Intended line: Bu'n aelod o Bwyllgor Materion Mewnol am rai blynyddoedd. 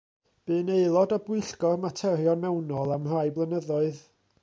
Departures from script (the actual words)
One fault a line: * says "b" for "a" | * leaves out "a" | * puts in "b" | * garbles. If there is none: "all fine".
all fine